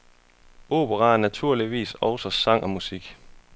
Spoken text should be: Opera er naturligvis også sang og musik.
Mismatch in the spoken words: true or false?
false